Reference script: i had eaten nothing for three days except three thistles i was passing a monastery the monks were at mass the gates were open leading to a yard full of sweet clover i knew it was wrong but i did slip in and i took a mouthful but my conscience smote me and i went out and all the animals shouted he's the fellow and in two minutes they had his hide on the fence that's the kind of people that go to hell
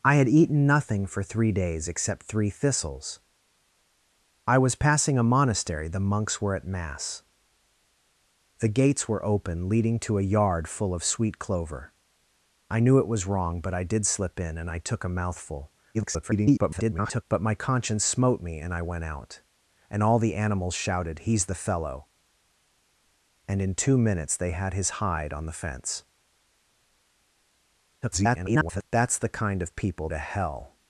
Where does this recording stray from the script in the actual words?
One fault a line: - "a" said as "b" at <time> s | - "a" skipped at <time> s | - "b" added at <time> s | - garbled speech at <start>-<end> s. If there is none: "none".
- garbled speech at 15.9-17.2 s
- garbled speech at 28.0-28.8 s
- "that go" skipped at 30.1 s